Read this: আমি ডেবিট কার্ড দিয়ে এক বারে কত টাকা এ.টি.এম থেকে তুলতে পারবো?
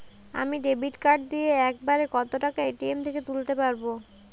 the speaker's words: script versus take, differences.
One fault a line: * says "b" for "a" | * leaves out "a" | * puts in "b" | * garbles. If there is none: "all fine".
all fine